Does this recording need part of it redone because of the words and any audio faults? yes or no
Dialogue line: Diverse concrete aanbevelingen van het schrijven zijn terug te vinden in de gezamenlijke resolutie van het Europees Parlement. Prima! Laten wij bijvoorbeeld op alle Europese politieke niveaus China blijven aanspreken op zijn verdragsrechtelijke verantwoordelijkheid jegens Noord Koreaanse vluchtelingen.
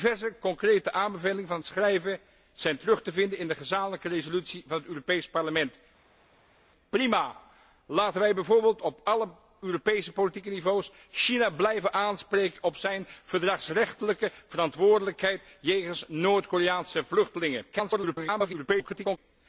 yes